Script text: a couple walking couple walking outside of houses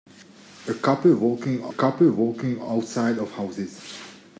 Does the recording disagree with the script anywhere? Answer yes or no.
no